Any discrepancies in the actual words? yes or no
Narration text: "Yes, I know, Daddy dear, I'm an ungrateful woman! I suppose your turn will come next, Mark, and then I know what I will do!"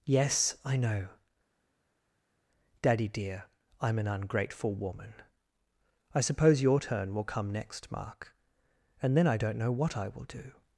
yes